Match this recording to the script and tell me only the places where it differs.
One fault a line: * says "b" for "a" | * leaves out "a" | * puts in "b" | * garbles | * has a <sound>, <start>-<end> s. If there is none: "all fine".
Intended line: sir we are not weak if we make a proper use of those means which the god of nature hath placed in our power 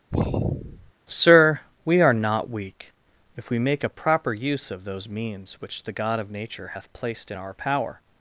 * has a sigh, 0.1-0.9 s